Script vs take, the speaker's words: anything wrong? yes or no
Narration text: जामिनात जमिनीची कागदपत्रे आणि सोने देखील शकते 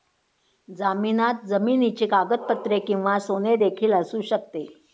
yes